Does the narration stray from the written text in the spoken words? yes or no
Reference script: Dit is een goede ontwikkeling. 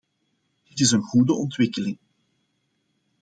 no